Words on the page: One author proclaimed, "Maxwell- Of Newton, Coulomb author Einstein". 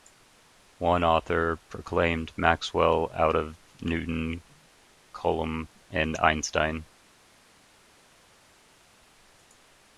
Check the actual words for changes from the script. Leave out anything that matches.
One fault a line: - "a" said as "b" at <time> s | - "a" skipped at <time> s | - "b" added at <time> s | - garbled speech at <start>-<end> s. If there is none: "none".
- "Out" added at 3.1 s
- "author" said as "and" at 5.9 s